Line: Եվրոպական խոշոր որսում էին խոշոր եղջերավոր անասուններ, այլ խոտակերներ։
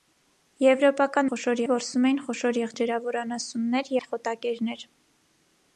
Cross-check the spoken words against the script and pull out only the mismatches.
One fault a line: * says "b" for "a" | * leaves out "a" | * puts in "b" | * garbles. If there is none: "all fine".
all fine